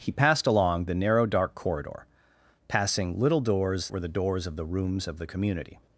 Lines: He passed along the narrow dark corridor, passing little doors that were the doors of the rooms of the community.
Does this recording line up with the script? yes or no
no